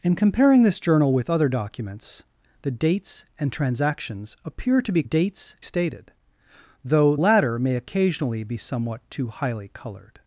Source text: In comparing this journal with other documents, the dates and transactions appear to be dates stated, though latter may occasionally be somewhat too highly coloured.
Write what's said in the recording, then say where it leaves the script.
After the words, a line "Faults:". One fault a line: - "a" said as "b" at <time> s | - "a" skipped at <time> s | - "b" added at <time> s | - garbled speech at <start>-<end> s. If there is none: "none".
In comparing this journal with other documents, the dates and transactions appear to be dates stated, though latter may occasionally be somewhat too highly coloured.
Faults:
none